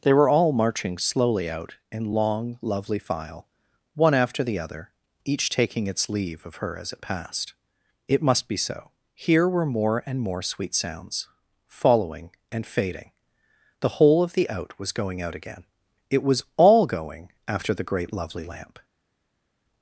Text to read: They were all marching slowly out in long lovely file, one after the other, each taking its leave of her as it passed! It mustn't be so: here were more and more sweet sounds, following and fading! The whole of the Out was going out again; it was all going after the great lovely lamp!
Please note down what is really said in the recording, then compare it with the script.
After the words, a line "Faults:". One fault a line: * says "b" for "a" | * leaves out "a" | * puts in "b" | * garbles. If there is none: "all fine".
They were all marching slowly out in long lovely file, one after the other, each taking its leave of her as it passed! It must be so: here were more and more sweet sounds, following and fading! The whole of the Out was going out again; it was all going after the great lovely lamp!
Faults:
* says "must" for "mustn't"